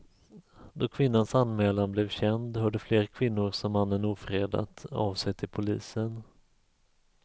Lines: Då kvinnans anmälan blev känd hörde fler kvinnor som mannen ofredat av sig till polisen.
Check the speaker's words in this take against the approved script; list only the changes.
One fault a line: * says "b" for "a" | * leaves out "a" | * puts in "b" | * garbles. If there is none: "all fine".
all fine